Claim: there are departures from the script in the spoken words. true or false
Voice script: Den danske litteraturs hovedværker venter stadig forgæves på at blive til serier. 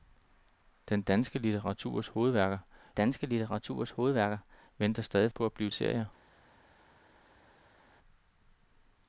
true